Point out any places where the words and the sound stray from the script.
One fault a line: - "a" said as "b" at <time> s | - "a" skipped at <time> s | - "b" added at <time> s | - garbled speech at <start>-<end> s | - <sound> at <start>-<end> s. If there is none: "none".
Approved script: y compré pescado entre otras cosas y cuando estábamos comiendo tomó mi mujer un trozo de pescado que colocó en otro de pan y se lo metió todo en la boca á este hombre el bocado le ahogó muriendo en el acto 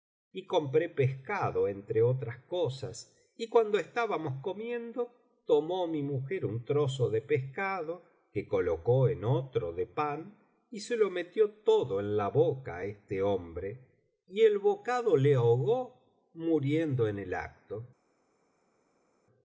- "y" added at 14.3 s